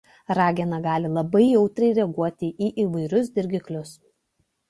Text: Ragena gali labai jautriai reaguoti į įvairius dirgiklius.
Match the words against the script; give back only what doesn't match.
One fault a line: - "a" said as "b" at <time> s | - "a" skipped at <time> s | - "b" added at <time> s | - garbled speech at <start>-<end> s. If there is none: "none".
none